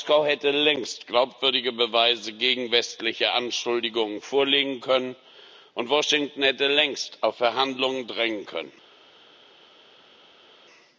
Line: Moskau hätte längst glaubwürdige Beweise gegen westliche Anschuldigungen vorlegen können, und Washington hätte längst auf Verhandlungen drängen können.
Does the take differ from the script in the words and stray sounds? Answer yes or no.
no